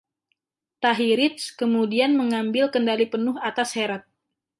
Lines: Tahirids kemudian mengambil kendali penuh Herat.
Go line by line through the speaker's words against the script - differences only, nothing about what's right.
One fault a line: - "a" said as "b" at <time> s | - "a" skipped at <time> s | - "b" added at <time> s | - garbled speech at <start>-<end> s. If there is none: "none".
- "atas" added at 3.4 s